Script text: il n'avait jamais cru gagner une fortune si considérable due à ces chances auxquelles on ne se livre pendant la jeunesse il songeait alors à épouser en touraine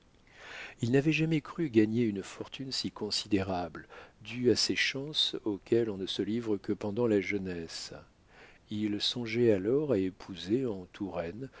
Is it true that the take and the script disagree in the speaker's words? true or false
true